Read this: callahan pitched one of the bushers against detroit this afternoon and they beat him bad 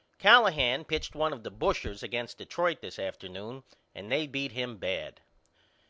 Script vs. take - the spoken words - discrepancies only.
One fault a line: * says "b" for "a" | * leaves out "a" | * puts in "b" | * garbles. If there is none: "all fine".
all fine